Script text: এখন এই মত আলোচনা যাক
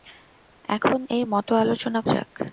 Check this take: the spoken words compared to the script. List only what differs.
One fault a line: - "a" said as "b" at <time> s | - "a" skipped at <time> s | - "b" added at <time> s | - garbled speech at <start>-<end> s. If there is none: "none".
none